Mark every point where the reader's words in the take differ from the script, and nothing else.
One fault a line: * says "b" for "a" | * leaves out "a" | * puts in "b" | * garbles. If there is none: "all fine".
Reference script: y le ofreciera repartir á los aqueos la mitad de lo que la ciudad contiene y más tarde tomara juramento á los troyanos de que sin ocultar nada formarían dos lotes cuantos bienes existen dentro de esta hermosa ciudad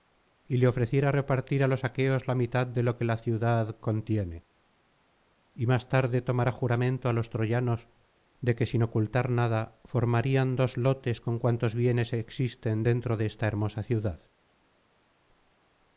* puts in "con"